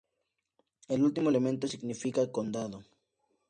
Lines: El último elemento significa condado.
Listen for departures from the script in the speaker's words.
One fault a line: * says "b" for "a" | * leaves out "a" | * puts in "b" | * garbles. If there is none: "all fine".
all fine